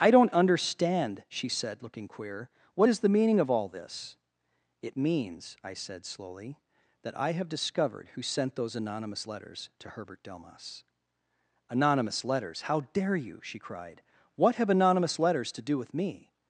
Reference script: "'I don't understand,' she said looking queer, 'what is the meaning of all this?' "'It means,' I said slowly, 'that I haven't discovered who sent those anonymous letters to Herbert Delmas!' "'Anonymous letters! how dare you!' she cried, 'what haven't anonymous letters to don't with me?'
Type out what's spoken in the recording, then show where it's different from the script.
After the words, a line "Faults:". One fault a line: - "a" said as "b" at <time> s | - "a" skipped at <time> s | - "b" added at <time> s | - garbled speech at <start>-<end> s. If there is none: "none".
"'I don't understand,' she said looking queer, 'what is the meaning of all this?' "'It means,' I said slowly, 'that I have discovered who sent those anonymous letters to Herbert Delmas!' "'Anonymous letters! how dare you!' she cried, 'what have anonymous letters to do with me?'
Faults:
- "haven't" said as "have" at 7.3 s
- "haven't" said as "have" at 14.6 s
- "don't" said as "do" at 15.6 s